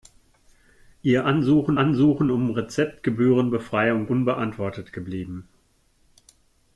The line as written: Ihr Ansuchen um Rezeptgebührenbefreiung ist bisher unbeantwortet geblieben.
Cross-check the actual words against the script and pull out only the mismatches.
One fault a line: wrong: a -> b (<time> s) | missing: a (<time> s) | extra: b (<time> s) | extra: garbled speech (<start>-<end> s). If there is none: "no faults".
extra: Ansuchen (1.8 s)
missing: ist bisher (4.1 s)